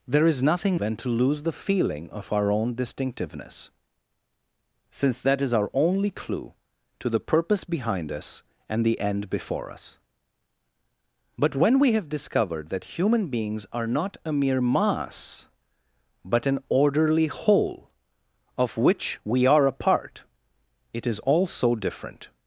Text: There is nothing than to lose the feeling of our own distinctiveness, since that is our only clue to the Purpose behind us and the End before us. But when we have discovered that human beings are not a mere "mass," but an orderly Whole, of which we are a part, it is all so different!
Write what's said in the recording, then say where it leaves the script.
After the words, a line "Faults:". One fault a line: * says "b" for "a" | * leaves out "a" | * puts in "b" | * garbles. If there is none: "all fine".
There is nothing than to lose the feeling of our own distinctiveness, since that is our only clue to the Purpose behind us and the End before us. But when we have discovered that human beings are not a mere "mass," but an orderly Whole, of which we are a part, it is all so different!
Faults:
all fine